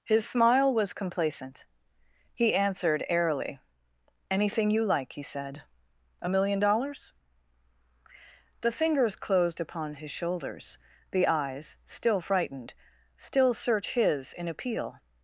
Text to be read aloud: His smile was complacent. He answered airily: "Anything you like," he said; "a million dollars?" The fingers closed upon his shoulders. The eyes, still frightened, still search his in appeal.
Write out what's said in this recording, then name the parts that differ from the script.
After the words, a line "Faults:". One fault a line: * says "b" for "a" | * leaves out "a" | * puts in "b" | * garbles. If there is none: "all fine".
His smile was complacent. He answered airily: "Anything you like," he said; "a million dollars?" The fingers closed upon his shoulders. The eyes, still frightened, still search his in appeal.
Faults:
all fine